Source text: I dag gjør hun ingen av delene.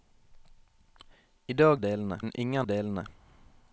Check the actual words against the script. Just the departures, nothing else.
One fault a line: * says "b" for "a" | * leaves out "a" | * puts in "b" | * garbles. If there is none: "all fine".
* says "delene" for "gjør"
* leaves out "av"